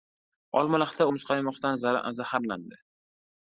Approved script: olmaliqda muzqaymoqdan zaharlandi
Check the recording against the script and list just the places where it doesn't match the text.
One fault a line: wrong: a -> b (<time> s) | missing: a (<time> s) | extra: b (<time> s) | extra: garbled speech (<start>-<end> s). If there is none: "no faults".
no faults